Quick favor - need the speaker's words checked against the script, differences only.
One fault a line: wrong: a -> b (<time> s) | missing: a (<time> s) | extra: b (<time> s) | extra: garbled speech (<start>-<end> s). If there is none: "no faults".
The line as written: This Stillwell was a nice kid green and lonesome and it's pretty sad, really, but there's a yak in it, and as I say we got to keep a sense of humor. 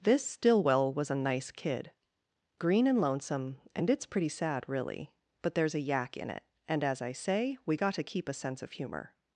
no faults